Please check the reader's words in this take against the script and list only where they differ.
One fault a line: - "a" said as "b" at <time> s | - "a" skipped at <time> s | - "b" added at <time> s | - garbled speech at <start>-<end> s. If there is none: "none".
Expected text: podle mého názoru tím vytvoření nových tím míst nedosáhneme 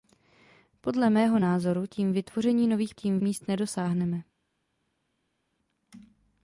none